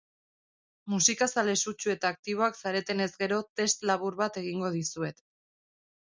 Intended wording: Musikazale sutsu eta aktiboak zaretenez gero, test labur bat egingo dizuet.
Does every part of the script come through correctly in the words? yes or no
yes